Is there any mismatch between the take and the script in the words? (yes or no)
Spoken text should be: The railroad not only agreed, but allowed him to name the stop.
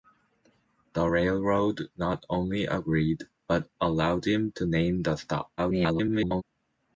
yes